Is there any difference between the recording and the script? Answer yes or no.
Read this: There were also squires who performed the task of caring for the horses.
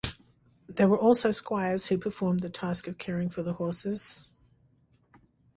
no